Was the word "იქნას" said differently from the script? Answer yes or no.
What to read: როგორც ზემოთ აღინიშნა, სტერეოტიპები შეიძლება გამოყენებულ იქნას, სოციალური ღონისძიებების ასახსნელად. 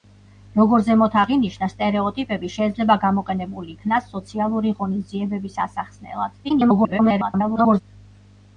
no